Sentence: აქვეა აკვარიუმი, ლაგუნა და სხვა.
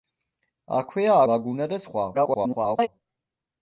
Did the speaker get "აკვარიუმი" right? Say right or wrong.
wrong